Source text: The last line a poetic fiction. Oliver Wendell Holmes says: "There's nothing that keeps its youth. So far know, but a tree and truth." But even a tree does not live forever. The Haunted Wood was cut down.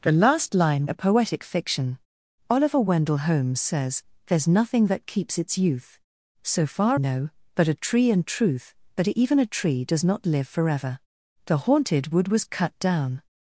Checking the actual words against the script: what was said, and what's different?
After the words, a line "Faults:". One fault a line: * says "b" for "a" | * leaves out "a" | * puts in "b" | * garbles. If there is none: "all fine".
The last line a poetic fiction. Oliver Wendell Holmes says: "There's nothing that keeps its youth. So far know, but a tree and truth." But even a tree does not live forever. The Haunted Wood was cut down.
Faults:
all fine